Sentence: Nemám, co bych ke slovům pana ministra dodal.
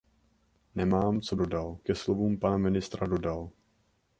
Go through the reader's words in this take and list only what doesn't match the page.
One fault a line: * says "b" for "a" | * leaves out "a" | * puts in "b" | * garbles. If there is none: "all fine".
* says "dodal" for "bych"